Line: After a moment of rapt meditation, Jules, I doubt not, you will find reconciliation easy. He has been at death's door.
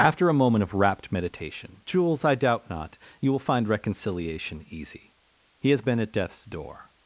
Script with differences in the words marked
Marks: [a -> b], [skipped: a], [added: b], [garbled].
After a moment of rapt meditation, Jules, I doubt not, you will find reconciliation easy. He has been at death's door.